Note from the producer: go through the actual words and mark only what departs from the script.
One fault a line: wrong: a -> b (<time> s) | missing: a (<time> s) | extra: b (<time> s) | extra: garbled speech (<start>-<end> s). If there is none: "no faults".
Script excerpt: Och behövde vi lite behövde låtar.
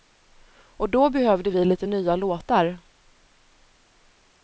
extra: då (0.9 s)
wrong: behövde -> nya (1.8 s)